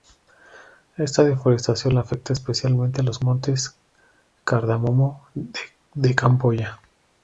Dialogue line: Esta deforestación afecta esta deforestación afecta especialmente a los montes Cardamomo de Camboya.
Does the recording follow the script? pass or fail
fail